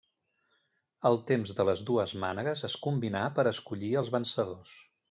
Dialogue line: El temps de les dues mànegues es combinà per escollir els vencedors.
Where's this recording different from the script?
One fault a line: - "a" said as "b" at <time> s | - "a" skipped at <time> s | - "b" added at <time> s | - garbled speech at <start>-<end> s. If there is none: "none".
none